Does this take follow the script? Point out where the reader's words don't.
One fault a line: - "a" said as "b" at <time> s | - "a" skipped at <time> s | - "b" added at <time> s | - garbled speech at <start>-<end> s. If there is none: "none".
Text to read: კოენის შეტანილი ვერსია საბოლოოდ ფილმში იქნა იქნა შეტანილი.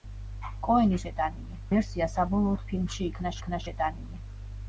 none